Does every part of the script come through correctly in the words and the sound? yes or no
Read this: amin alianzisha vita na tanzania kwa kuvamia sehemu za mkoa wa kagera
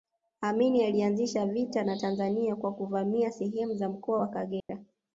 no